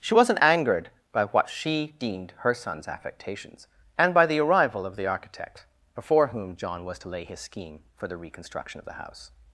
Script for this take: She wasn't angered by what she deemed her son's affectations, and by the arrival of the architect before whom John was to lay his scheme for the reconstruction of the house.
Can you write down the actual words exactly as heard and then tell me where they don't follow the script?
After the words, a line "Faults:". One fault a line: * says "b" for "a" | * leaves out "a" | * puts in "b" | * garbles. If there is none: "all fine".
She wasn't angered by what she deemed her son's affectations, and by the arrival of the architect before whom John was to lay his scheme for the reconstruction of the house.
Faults:
all fine